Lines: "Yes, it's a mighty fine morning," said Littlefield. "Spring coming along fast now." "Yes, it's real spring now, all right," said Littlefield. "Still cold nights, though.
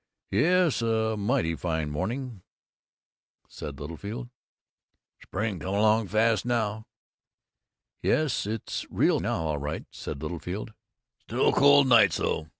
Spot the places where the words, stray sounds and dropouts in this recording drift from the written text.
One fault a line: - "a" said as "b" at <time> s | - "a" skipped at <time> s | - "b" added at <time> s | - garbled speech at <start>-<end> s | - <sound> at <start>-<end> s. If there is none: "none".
- "it's" skipped at 0.8 s
- "spring" skipped at 9.2 s